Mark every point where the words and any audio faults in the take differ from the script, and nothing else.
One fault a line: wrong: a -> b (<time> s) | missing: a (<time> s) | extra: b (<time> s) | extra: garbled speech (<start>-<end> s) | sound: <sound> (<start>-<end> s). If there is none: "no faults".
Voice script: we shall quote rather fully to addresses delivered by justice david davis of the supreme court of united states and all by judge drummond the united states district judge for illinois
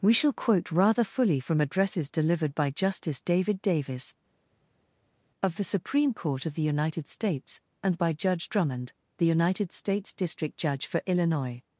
wrong: to -> from (1.4 s)
extra: the (6.5 s)
missing: all (8.0 s)